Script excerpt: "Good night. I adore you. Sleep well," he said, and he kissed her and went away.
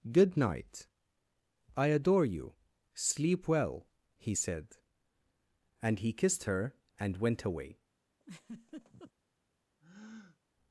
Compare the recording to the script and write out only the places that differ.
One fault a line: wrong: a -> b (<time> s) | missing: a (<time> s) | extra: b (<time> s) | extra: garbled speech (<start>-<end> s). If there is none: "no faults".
no faults